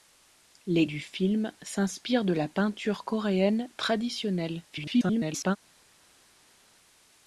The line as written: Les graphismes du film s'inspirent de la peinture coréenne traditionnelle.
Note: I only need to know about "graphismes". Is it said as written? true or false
false